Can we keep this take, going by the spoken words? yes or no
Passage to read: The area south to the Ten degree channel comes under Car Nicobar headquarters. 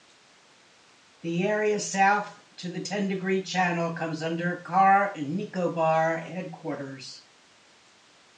yes